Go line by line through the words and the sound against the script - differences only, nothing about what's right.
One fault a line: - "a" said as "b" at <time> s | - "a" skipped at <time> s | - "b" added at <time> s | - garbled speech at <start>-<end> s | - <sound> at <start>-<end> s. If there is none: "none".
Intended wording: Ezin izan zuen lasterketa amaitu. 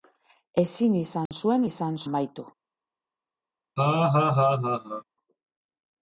- dropout at 1.3-1.3 s
- "lasterketa" said as "izan" at 1.7 s
- laugh at 3.8-5.0 s